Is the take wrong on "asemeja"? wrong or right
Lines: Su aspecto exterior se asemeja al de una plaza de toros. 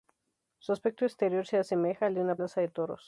right